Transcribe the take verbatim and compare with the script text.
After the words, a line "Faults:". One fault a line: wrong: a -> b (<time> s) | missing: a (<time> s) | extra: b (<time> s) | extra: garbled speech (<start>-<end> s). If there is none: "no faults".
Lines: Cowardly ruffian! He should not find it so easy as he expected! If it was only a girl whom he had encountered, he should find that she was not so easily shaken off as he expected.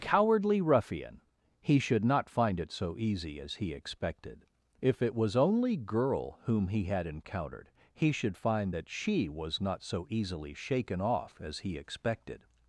Cowardly ruffian! He should not find it so easy as he expected! If it was only girl whom he had encountered, he should find that she was not so easily shaken off as he expected.
Faults:
missing: a (5.8 s)